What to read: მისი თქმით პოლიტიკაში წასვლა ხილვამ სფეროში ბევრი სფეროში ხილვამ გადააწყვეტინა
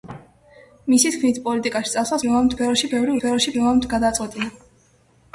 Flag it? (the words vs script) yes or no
no